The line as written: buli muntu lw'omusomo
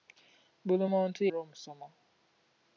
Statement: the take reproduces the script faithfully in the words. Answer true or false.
true